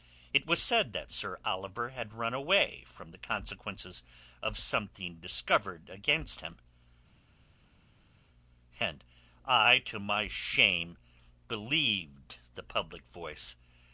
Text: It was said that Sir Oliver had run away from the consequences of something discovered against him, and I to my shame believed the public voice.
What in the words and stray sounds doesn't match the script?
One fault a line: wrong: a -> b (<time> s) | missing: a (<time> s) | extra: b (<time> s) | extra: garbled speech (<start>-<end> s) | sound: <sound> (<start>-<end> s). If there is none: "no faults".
no faults